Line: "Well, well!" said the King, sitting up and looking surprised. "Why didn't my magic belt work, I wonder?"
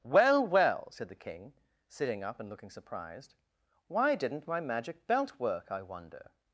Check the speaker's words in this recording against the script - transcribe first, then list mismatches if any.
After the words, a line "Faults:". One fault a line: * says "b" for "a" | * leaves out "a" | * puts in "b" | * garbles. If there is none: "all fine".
"Well, well!" said the King, sitting up and looking surprised. "Why didn't my magic belt work, I wonder?"
Faults:
all fine